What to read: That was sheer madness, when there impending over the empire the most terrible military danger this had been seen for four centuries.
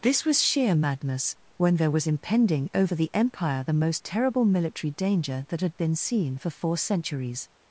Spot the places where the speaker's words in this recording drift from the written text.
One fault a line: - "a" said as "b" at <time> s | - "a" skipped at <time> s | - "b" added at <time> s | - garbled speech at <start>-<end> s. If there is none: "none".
- "That" said as "This" at 0.0 s
- "was" added at 1.9 s
- "this" said as "that" at 5.5 s